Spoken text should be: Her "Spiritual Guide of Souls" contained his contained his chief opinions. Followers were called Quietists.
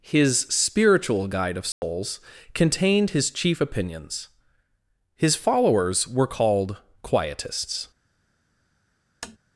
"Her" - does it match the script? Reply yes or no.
no